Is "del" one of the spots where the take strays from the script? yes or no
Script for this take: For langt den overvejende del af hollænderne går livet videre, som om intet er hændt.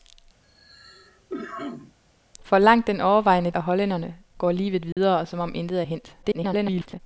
yes